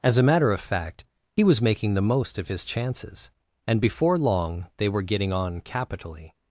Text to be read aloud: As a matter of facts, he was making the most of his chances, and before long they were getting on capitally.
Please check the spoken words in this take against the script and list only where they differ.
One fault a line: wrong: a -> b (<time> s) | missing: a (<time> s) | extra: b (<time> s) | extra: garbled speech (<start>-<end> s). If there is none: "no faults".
wrong: facts -> fact (0.6 s)